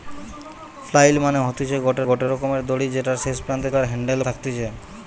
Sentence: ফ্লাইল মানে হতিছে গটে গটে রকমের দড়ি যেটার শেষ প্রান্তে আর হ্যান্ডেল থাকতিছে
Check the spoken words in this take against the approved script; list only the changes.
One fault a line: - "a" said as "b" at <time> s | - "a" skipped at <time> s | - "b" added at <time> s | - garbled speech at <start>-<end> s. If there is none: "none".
none